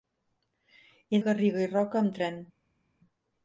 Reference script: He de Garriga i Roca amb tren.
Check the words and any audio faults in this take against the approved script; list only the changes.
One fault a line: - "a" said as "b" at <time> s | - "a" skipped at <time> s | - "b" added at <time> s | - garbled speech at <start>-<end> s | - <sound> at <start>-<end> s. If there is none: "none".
none